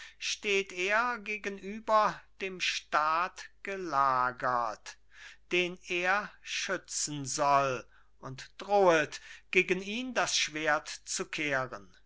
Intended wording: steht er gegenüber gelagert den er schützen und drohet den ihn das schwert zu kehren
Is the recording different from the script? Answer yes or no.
yes